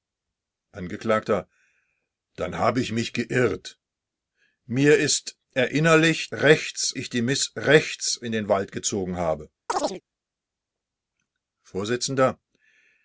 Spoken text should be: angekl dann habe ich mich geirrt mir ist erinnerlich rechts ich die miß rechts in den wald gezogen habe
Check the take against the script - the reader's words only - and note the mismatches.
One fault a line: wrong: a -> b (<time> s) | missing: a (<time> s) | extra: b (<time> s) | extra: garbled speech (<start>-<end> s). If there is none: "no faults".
no faults